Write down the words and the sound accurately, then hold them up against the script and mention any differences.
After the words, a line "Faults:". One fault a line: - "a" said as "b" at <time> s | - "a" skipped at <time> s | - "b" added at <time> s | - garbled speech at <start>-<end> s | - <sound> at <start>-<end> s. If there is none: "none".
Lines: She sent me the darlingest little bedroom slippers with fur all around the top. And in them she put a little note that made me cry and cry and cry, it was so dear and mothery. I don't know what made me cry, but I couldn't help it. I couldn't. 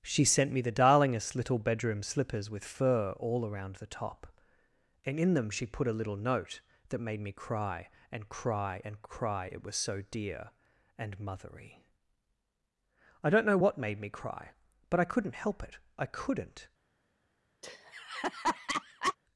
She sent me the darlingest little bedroom slippers with fur all around the top. And in them she put a little note that made me cry and cry and cry, it was so dear and mothery. I don't know what made me cry, but I couldn't help it. I couldn't.
Faults:
- laugh at 17.6-19.2 s